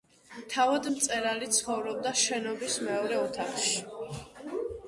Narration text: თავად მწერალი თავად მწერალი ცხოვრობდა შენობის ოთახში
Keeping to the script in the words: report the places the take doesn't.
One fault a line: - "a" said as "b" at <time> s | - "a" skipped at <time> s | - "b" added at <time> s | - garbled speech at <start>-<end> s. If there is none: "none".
- "თავად მწერალი" skipped at 1.5 s
- "მეორე" added at 2.9 s